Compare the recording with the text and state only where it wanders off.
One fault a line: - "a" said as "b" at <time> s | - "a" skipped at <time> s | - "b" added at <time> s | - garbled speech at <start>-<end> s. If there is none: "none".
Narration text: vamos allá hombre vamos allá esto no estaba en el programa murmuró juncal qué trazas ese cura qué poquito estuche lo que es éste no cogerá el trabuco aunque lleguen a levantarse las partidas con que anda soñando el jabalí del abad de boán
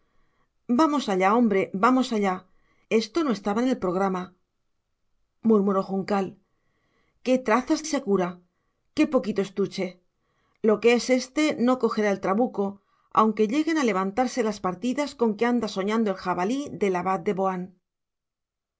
none